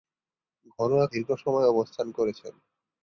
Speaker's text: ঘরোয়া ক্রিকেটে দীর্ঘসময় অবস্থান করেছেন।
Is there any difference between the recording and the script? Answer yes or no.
yes